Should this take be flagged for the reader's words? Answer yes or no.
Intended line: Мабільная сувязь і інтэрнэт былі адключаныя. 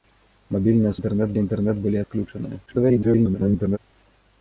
yes